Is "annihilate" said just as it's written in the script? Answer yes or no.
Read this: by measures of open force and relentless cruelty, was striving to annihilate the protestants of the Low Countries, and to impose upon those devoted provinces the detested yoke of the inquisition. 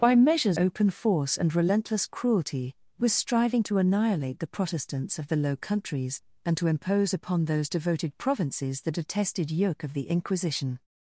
yes